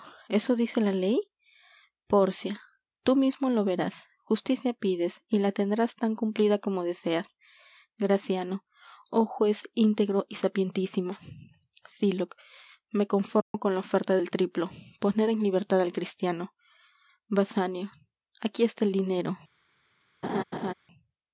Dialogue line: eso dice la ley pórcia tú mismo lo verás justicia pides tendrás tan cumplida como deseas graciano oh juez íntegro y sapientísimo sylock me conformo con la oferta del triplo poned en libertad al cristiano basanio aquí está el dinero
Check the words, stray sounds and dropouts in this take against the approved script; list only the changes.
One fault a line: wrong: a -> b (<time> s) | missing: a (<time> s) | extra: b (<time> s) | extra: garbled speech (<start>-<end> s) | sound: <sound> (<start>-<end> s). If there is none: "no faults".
extra: y la (5.3 s)
sound: dropout (13.4-13.5 s)
sound: laugh (20.2-20.7 s)